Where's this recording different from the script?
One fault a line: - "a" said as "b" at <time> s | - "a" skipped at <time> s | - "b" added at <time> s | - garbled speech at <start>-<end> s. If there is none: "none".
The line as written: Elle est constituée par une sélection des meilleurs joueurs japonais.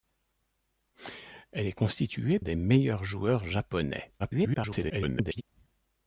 - "par une sélection" skipped at 2.4 s
- garbled speech at 4.2-5.4 s